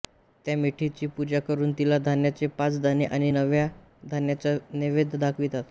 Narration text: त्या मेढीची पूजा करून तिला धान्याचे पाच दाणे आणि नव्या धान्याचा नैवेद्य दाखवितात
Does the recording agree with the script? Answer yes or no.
yes